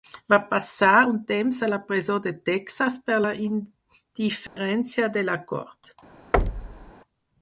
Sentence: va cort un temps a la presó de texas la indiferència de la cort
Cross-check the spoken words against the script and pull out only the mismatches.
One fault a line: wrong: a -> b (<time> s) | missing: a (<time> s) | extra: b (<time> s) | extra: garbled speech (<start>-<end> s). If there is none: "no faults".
wrong: cort -> passar (0.5 s)
extra: per (3.1 s)